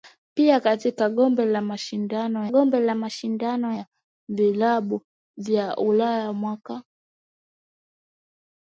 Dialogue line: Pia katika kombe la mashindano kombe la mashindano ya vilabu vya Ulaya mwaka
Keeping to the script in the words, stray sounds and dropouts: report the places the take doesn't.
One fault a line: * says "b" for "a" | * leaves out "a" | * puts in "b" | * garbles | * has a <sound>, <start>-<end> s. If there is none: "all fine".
all fine